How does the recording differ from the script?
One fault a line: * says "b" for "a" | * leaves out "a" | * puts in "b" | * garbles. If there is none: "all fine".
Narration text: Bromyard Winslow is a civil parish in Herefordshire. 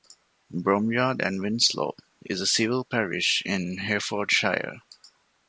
* puts in "and"